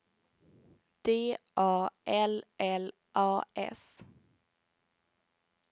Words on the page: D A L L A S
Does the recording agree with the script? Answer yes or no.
yes